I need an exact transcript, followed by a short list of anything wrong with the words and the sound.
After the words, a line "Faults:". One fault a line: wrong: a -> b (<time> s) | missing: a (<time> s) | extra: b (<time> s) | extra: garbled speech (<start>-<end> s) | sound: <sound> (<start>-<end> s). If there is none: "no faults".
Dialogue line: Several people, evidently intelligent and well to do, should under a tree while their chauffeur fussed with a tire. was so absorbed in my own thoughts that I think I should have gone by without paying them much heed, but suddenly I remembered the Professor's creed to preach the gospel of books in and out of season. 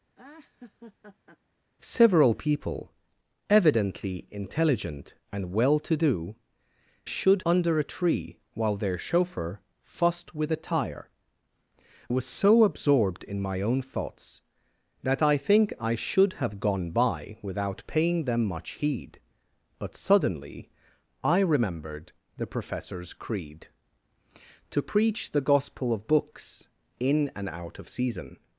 Several people, evidently intelligent and well to do, should under a tree while their chauffeur fussed with a tire. was so absorbed in my own thoughts that I think I should have gone by without paying them much heed, but suddenly I remembered the Professor's creed to preach the gospel of books in and out of season.
Faults:
sound: laugh (0.1-1.4 s)